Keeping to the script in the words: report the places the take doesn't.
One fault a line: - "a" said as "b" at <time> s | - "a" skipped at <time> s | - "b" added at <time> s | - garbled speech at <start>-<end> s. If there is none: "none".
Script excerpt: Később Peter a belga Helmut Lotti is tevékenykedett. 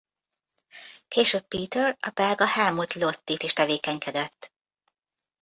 none